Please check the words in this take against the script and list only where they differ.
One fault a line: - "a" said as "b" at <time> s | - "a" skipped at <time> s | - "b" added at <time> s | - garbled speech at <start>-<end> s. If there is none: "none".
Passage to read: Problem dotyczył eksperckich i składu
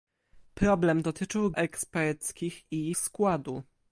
none